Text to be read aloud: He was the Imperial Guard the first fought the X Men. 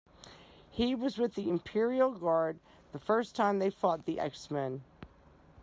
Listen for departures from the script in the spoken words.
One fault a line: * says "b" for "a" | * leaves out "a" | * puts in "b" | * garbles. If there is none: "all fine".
* puts in "with"
* puts in "time they"